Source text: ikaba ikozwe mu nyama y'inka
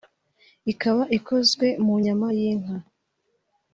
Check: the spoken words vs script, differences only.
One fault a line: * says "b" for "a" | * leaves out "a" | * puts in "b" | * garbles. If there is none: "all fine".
all fine